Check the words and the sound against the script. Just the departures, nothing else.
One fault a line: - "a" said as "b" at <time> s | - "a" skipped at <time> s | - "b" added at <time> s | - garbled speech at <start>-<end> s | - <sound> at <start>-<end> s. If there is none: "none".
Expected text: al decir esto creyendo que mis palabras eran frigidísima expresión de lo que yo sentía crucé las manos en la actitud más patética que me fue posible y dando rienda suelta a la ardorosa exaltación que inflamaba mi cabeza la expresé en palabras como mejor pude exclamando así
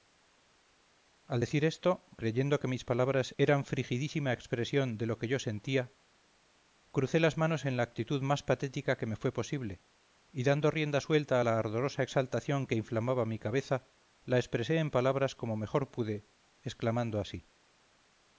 none